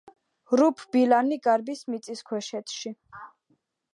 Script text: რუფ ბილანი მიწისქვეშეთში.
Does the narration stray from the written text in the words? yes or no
yes